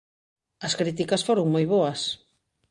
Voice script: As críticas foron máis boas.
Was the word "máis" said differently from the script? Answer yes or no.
yes